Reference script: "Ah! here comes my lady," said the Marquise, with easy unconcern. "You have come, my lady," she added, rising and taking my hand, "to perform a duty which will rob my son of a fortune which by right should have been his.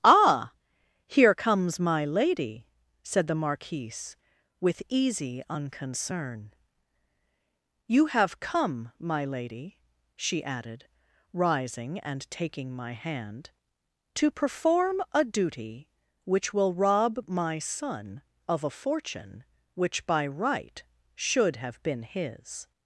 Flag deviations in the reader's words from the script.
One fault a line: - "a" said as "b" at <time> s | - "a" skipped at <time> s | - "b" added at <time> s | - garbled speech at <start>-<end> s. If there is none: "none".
none